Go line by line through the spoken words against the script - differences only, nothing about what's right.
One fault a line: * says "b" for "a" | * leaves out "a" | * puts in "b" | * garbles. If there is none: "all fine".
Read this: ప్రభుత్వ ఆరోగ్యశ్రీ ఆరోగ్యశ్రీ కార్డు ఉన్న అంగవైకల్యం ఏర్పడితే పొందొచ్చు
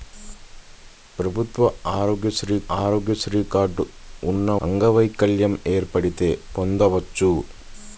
all fine